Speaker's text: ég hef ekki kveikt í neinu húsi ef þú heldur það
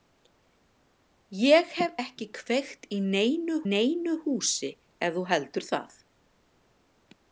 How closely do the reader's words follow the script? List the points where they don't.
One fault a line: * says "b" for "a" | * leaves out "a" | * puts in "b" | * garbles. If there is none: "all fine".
* puts in "neinu"